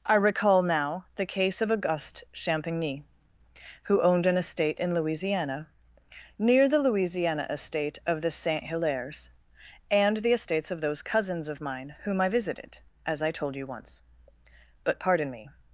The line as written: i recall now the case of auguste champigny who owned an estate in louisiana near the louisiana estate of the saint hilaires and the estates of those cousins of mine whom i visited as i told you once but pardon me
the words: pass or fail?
pass